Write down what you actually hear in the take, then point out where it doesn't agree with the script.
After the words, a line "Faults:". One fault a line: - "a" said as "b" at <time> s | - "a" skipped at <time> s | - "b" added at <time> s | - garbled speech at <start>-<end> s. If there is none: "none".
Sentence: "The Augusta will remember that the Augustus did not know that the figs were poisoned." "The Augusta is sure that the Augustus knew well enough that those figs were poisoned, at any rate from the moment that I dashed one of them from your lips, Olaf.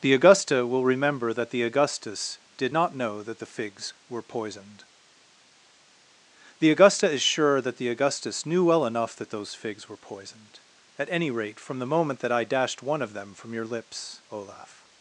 "The Augusta will remember that the Augustus did not know that the figs were poisoned." "The Augusta is sure that the Augustus knew well enough that those figs were poisoned, at any rate from the moment that I dashed one of them from your lips, Olaf.
Faults:
none